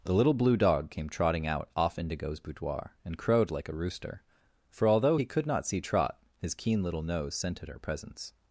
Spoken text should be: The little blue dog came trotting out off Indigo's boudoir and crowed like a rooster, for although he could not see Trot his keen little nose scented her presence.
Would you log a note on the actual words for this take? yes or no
no